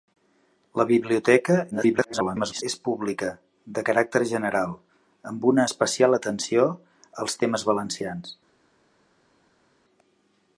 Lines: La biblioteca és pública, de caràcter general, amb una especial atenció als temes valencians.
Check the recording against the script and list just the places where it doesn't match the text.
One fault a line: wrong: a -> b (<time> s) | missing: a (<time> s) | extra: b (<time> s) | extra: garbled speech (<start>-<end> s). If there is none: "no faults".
extra: garbled speech (1.7-2.6 s)